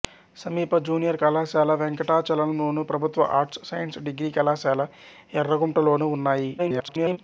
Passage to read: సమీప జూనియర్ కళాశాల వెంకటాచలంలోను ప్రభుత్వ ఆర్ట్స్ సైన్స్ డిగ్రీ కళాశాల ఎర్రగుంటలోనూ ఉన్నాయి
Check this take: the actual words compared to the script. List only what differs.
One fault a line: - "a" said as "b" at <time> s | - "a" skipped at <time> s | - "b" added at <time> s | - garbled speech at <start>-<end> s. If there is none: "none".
- garbled speech at 6.6-7.2 s